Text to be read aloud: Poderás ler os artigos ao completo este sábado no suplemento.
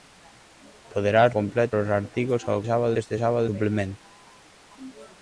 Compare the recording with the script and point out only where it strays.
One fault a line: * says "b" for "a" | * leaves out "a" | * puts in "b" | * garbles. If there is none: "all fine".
* says "completo" for "ler"
* says "sábado" for "completo"
* leaves out "no"